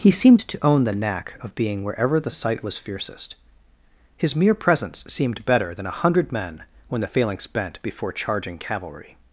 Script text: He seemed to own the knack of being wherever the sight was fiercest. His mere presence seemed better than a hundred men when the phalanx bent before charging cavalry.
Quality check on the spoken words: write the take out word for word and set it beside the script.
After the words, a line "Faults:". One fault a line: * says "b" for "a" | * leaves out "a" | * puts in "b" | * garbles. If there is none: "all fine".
He seemed to own the knack of being wherever the sight was fiercest. His mere presence seemed better than a hundred men when the phalanx bent before charging cavalry.
Faults:
all fine